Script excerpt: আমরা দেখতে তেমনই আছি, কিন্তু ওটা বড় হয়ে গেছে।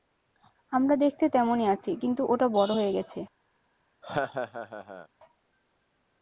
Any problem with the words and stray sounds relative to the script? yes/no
yes